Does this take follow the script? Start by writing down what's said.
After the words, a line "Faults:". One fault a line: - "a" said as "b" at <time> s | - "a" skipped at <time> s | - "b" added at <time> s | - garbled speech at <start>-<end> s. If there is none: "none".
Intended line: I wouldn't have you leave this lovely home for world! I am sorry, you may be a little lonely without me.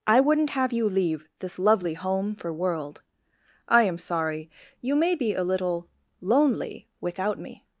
I wouldn't have you leave this lovely home for world! I am sorry, you may be a little lonely without me.
Faults:
none